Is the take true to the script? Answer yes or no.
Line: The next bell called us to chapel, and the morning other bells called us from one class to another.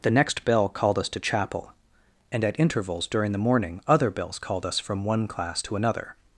no